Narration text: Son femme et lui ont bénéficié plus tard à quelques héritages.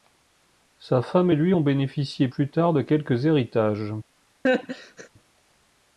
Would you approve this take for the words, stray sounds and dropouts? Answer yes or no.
no